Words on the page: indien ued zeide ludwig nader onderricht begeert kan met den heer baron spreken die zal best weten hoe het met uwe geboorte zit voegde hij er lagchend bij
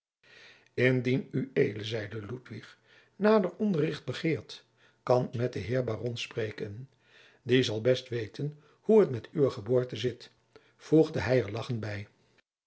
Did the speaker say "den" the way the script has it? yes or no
yes